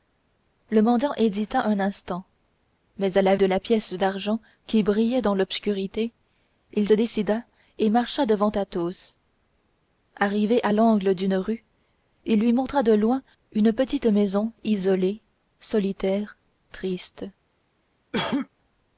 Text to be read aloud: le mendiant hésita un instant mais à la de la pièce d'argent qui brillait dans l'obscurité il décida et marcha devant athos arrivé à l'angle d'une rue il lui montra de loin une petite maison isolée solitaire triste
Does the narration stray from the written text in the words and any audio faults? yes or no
yes